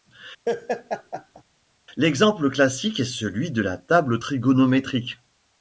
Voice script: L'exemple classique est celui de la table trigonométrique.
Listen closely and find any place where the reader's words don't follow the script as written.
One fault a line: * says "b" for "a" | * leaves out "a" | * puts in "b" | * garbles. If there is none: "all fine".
all fine